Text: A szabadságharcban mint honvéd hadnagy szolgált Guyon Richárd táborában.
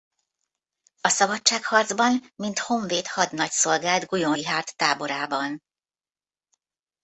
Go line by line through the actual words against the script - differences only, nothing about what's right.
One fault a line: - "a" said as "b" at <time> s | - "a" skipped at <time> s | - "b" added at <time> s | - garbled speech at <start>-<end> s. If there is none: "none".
none